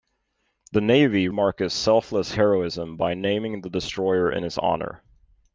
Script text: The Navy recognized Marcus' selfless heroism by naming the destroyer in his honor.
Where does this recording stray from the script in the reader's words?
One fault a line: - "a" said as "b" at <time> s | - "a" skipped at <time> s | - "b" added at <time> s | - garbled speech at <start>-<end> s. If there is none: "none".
- "recognized" skipped at 1.3 s